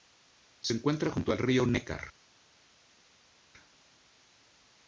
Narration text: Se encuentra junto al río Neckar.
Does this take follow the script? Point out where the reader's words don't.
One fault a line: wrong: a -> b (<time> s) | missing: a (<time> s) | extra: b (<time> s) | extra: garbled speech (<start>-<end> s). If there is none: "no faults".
no faults